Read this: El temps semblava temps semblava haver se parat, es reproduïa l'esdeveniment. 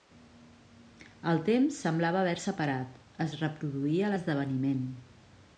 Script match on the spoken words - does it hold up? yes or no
no